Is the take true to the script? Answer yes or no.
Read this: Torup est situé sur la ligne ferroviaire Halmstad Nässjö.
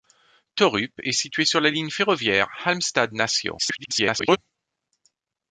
no